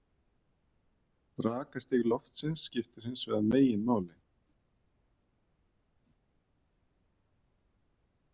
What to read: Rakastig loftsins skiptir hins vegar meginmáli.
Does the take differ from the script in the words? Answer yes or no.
no